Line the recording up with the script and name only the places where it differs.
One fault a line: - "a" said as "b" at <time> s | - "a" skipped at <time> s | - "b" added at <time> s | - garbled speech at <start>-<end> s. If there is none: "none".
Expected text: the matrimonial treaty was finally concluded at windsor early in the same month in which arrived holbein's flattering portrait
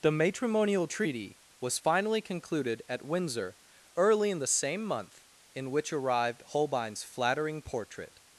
none